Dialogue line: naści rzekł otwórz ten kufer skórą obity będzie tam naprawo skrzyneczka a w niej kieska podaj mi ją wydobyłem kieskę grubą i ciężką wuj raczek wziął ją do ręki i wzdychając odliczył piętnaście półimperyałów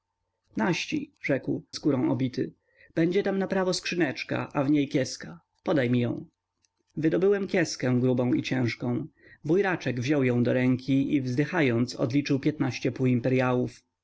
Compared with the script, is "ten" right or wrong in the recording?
wrong